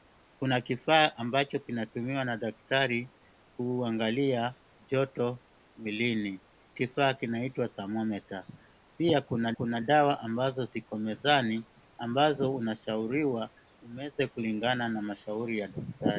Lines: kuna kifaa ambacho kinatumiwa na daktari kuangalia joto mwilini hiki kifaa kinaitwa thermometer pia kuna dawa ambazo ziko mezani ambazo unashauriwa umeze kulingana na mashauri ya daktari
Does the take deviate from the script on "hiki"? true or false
true